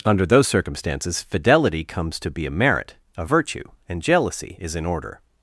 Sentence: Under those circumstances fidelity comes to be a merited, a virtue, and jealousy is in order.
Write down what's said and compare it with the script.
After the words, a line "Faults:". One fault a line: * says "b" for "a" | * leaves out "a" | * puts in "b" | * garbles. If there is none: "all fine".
Under those circumstances fidelity comes to be a merit, a virtue, and jealousy is in order.
Faults:
* says "merit" for "merited"